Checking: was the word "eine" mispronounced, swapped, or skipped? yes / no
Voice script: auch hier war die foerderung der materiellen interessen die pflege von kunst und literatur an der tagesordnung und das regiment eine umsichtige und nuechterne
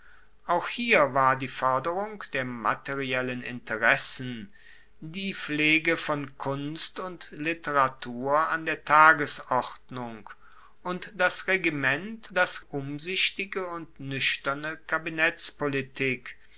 yes